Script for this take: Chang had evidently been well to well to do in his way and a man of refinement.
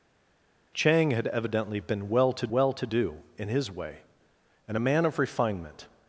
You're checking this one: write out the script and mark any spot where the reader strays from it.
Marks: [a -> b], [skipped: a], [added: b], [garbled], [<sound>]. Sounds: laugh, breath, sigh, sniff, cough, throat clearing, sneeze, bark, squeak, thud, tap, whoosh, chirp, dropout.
Chang had evidently been well to well to do in his way and a man of refinement.